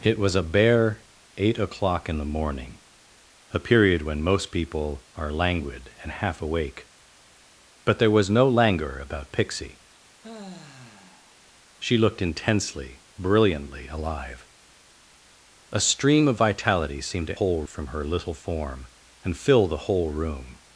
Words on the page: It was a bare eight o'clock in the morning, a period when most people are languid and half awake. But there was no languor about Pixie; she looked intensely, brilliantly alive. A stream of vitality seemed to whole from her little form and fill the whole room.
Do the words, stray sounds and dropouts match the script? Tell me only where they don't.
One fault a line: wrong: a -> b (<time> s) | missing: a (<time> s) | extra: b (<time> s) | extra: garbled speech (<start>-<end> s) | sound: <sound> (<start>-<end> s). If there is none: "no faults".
sound: sigh (10.2-11.4 s)